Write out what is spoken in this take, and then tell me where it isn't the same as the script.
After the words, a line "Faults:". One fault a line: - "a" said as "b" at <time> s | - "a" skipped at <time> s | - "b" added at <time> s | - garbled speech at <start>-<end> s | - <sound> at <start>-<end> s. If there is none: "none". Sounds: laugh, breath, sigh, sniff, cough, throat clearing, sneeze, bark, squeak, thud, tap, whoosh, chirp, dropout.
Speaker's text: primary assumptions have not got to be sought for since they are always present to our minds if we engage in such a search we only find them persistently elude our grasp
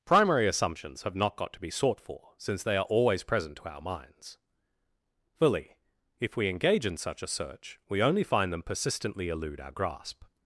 primary assumptions have not got to be sought for since they are always present to our minds fully if we engage in such a search we only find them persistently elude our grasp
Faults:
- "fully" added at 5.4 s